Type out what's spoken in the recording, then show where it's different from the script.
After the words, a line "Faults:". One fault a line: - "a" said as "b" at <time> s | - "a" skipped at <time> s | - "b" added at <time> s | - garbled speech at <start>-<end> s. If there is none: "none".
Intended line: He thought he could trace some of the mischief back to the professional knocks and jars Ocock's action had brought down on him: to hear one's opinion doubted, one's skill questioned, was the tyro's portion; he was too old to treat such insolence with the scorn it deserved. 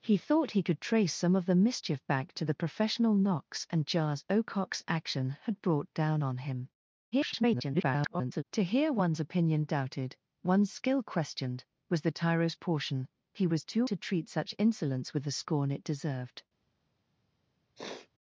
He thought he could trace some of the mischief back to the professional knocks and jars Ocock's action had brought down on him: [garbled] to hear one's opinion doubted, one's skill questioned, was the tyro's portion; he was too to treat such insolence with the scorn it deserved.
Faults:
- garbled speech at 7.1-8.4 s
- "old" skipped at 13.9 s